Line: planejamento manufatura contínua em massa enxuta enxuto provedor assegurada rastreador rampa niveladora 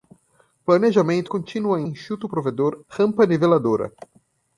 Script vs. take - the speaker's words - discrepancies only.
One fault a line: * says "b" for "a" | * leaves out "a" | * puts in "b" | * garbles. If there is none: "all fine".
* leaves out "manufatura"
* leaves out "massa enxuta"
* leaves out "assegurada rastreador"